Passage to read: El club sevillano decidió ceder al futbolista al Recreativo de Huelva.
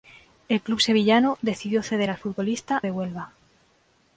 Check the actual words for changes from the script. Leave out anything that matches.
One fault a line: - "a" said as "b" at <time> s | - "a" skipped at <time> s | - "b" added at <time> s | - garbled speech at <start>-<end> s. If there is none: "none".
- "al Recreativo" skipped at 2.8 s